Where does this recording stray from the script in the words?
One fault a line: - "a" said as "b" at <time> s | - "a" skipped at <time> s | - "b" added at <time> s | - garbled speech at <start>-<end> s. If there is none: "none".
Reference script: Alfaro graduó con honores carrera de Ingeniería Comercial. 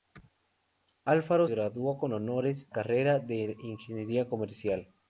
none